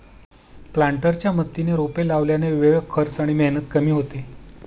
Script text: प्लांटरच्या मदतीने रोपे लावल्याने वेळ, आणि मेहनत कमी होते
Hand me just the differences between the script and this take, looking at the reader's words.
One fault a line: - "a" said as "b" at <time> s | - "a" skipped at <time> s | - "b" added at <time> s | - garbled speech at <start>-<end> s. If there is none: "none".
- "खर्च" added at 2.9 s